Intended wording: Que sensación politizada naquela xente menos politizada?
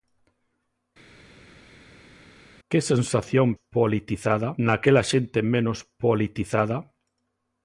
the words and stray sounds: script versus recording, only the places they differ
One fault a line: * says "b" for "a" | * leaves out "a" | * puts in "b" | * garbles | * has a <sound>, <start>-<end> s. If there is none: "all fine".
all fine